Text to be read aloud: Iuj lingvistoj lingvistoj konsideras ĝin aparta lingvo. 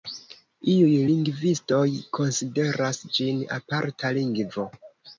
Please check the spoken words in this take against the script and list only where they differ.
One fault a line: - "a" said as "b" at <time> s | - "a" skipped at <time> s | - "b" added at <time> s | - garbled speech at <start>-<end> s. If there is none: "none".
- "lingvistoj" skipped at 1.8 s